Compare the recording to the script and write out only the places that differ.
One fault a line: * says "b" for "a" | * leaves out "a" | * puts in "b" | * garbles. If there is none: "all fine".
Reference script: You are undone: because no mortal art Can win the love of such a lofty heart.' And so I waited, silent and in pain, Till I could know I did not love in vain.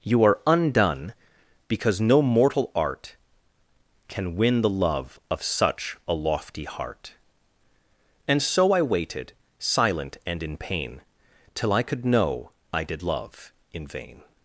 * leaves out "not"